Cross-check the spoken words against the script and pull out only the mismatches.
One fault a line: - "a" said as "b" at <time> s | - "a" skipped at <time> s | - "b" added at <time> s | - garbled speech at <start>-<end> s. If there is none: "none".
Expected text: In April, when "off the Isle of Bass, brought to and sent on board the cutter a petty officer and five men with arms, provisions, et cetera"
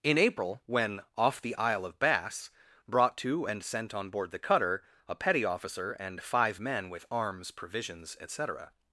none